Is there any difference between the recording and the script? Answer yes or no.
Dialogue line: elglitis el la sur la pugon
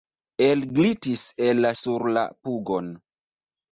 no